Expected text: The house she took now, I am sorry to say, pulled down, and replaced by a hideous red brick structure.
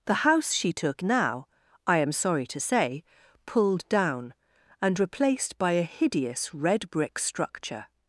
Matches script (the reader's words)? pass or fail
pass